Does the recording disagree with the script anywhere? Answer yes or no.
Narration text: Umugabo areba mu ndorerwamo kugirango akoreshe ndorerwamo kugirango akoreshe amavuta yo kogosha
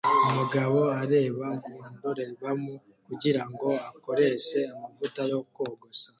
yes